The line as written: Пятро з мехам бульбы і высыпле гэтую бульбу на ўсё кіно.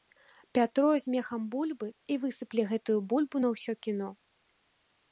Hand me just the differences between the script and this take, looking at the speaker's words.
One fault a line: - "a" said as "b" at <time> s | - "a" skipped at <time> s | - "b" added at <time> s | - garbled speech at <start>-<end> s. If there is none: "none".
none